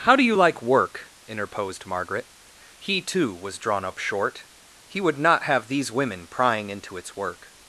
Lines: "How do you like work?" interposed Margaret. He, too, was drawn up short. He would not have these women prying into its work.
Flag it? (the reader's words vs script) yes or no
no